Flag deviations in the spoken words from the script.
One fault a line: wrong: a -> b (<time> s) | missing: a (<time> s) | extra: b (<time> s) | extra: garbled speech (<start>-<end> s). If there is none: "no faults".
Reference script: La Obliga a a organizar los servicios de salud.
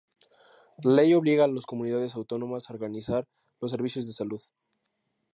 extra: Ley (0.9 s)
extra: las Comunidades Autónomas (1.5 s)